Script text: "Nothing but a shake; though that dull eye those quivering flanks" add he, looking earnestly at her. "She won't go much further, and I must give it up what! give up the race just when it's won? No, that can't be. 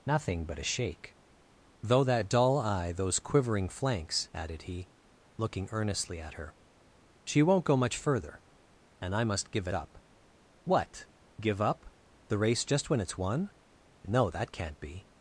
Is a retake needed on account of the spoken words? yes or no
yes